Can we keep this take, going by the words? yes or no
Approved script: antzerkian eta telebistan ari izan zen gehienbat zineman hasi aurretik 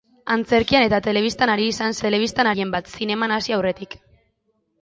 no